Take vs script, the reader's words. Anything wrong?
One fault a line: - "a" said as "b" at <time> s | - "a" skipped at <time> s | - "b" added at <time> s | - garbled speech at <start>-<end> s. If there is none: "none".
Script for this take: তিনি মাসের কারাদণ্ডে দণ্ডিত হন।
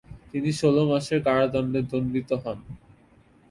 - "ষোল" added at 0.6 s